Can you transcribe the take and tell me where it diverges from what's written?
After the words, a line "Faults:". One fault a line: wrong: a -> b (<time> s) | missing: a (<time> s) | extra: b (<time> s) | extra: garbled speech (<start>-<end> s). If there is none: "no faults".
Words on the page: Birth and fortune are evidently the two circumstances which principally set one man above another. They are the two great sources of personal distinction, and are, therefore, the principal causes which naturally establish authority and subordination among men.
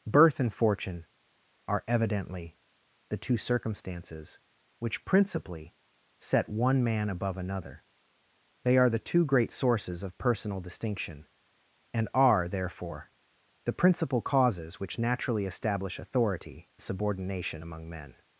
Birth and fortune are evidently the two circumstances which principally set one man above another. They are the two great sources of personal distinction, and are, therefore, the principal causes which naturally establish authority subordination among men.
Faults:
missing: and (16.7 s)